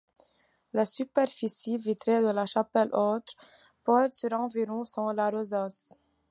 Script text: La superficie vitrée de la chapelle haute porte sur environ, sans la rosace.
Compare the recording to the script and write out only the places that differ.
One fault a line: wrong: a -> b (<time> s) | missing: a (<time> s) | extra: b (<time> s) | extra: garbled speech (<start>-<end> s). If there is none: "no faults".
no faults